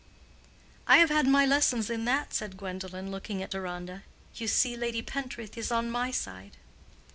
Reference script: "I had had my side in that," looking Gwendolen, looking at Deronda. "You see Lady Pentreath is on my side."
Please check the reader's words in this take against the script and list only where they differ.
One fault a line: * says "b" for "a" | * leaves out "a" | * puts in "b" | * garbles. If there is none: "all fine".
* says "have" for "had"
* says "lessons" for "side"
* says "said" for "looking"